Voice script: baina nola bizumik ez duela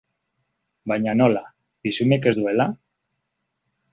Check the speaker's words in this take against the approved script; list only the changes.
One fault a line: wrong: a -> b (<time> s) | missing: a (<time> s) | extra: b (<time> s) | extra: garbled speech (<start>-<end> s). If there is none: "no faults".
no faults